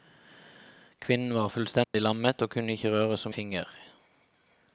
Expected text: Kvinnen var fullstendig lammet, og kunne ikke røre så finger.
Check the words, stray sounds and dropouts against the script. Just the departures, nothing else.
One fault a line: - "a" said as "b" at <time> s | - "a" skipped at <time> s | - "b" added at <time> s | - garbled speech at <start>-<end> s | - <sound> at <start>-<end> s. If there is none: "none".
- dropout at 1.8-1.9 s